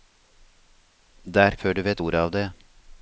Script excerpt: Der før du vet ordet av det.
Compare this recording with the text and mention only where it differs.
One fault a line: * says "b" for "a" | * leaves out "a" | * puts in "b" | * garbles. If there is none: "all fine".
all fine